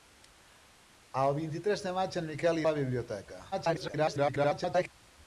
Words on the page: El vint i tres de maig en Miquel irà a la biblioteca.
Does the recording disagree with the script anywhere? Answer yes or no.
yes